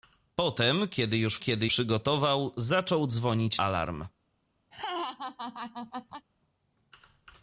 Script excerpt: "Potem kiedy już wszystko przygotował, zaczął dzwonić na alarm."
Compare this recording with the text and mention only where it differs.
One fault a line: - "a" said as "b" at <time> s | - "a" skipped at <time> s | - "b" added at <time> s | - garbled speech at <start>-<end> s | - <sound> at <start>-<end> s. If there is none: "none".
- "wszystko" said as "kiedy" at 1.4 s
- "na" skipped at 3.6 s
- laugh at 4.7-6.3 s